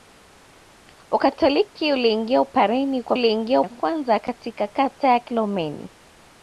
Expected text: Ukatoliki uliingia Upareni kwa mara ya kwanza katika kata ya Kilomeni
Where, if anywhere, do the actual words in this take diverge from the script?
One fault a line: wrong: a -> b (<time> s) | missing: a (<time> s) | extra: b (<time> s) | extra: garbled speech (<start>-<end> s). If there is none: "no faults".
wrong: mara -> uliingia (3.1 s)